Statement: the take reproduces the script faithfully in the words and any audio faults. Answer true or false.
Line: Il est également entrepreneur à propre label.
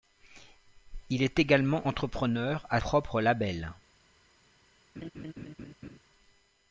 false